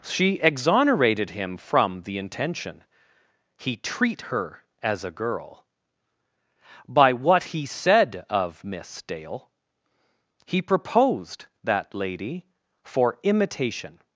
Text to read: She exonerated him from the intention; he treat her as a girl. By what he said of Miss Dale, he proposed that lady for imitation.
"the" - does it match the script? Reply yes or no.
yes